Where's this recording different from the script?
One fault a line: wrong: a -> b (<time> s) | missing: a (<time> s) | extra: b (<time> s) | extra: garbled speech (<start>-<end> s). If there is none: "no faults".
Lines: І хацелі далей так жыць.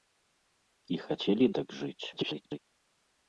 missing: далей (1.4 s)
extra: garbled speech (2.1-2.6 s)